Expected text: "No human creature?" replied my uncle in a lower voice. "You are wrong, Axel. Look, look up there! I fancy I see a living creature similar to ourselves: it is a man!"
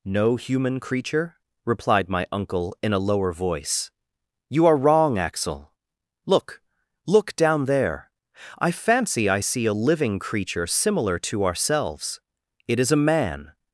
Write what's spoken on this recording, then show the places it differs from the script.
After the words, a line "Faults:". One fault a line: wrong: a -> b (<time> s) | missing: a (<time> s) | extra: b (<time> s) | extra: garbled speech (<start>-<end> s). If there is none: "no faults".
"No human creature?" replied my uncle in a lower voice. "You are wrong, Axel. Look, look down there! I fancy I see a living creature similar to ourselves: it is a man!"
Faults:
wrong: up -> down (7.3 s)